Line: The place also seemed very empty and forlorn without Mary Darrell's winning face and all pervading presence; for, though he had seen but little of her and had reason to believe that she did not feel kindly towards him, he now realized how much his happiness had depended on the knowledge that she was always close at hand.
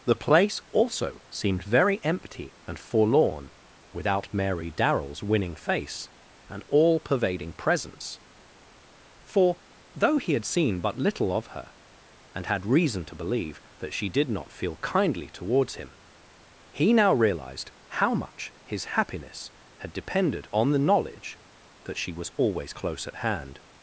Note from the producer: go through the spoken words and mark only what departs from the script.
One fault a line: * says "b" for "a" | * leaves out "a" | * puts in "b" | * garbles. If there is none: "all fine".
all fine